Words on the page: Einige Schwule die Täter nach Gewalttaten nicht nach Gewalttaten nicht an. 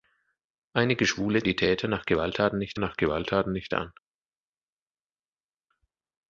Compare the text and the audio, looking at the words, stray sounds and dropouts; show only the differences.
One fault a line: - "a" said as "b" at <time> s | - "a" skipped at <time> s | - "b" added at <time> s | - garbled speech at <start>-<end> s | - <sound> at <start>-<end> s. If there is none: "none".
none